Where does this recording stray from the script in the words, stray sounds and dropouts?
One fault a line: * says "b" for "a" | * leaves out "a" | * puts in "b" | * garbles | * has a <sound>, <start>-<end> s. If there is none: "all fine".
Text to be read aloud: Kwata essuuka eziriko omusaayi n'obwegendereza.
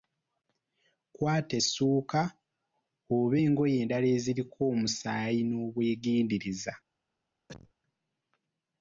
* puts in "oba engoye endala"
* has a cough, 7.5-7.7 s